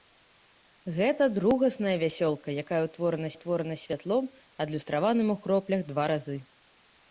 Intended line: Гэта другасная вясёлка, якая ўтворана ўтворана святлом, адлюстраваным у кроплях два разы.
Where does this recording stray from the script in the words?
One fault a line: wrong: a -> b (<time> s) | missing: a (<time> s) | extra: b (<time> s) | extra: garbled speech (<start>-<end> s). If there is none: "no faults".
no faults